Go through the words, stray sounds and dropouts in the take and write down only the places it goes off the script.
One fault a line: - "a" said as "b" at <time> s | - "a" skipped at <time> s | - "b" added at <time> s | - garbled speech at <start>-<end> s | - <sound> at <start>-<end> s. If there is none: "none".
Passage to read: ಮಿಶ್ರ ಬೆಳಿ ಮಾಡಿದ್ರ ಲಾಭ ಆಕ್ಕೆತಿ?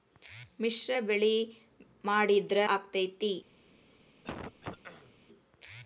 - "ಲಾಭ" skipped at 2.6 s
- throat clearing at 4.2-5.2 s